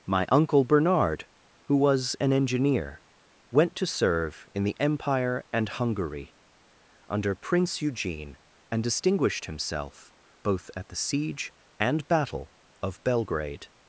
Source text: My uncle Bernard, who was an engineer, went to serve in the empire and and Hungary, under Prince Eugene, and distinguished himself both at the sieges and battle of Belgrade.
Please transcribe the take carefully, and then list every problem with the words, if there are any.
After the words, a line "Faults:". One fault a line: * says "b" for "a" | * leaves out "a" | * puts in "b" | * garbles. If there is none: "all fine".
My uncle Bernard, who was an engineer, went to serve in the empire and Hungary, under Prince Eugene, and distinguished himself both at the siege and battle of Belgrade.
Faults:
* leaves out "and"
* says "siege" for "sieges"